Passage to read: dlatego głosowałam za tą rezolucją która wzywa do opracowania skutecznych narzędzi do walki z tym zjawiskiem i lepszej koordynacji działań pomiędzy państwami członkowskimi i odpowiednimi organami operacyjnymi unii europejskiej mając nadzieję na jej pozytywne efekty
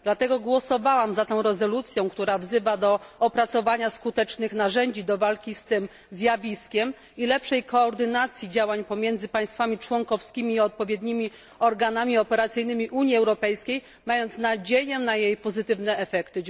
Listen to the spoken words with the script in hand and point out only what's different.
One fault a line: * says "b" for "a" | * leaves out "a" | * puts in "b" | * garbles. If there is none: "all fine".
all fine